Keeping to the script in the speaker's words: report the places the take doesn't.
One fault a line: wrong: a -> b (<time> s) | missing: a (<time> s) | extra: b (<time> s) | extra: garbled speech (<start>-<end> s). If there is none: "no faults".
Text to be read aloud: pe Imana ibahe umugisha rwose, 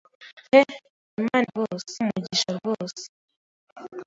wrong: ibahe -> rwose (1.5 s)